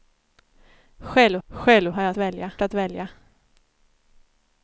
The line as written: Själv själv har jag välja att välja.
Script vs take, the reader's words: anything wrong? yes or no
no